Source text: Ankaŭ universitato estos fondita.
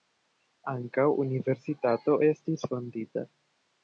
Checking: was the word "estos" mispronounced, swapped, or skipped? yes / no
yes